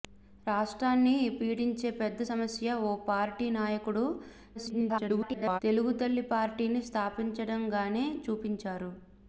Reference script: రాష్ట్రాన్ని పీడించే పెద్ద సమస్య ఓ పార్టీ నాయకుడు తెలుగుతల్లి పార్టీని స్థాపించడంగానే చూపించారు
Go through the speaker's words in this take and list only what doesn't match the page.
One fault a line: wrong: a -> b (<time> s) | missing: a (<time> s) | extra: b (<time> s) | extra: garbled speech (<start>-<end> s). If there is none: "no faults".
extra: garbled speech (4.5-5.6 s)